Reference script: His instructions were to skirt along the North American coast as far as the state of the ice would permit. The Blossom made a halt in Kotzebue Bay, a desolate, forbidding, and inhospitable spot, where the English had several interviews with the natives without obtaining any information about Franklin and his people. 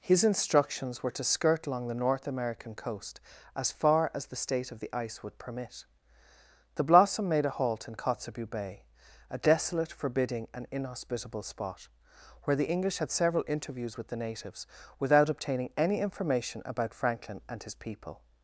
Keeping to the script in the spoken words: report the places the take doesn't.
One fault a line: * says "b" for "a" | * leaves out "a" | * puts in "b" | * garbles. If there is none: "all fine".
all fine